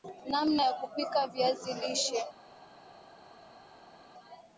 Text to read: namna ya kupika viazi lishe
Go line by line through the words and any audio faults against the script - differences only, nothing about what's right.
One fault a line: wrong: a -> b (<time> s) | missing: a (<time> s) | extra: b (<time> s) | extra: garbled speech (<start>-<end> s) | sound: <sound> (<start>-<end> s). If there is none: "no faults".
no faults